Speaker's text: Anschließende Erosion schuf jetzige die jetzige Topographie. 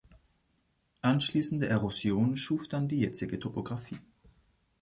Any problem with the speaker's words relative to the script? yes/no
yes